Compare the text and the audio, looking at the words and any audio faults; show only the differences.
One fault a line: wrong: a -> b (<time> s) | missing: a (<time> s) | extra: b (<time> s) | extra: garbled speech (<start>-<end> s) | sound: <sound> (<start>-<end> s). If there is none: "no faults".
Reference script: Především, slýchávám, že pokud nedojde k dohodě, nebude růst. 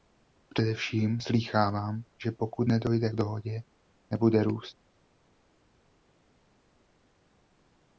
no faults